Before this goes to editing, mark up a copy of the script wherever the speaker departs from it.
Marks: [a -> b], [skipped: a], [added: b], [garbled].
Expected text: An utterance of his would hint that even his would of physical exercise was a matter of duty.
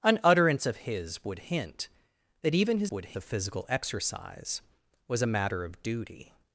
An utterance of his would hint that even his would of physical exercise was a matter of duty.